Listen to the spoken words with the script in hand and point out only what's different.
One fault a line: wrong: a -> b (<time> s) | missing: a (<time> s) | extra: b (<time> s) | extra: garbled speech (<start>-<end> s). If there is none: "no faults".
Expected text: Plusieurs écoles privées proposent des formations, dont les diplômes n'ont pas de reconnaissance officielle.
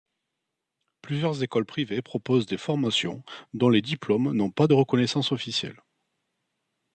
no faults